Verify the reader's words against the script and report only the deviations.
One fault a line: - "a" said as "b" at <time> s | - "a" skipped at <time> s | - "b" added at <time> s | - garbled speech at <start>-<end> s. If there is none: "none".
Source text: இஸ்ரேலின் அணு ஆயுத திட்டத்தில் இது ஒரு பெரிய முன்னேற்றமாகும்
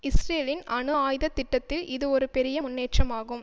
none